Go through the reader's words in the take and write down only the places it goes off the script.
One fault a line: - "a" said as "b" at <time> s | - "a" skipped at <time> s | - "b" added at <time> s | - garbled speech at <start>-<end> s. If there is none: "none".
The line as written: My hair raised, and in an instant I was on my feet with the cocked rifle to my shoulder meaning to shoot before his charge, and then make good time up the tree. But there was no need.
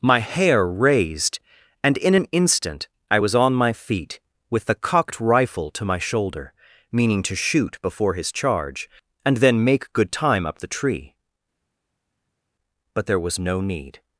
none